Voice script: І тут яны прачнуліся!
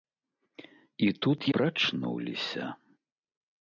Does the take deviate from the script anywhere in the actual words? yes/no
yes